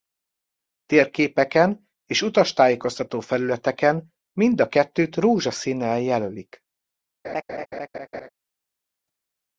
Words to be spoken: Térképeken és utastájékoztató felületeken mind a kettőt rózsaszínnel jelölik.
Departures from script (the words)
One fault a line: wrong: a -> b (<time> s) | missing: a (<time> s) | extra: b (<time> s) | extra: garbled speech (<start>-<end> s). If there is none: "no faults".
no faults